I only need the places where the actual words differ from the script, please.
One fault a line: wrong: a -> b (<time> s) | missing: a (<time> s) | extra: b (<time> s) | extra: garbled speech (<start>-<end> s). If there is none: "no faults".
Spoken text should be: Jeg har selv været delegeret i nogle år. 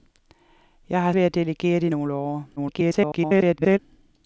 missing: selv (1.1 s)
extra: garbled speech (2.6-3.8 s)